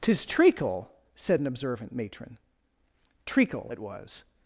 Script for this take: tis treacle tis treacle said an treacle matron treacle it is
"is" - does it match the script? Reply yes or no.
no